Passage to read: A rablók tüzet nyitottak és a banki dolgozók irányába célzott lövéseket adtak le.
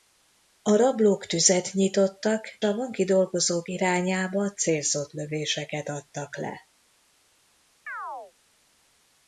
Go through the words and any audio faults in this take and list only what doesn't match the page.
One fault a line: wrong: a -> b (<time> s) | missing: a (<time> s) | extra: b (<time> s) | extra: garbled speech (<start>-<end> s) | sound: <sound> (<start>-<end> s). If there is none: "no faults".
missing: és (2.6 s)
sound: chirp (7.9-8.3 s)